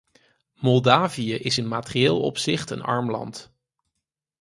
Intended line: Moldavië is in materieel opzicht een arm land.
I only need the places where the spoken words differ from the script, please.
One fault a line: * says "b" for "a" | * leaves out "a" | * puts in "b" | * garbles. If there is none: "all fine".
all fine